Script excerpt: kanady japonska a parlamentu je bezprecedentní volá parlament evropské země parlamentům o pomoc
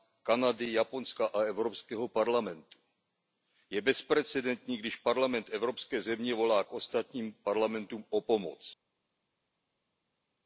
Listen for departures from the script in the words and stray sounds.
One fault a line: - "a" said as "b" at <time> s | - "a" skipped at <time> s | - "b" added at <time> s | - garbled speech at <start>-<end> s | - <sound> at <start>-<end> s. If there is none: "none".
- "evropského" added at 1.4 s
- "volá" said as "když" at 4.8 s
- "volá k ostatním" added at 6.3 s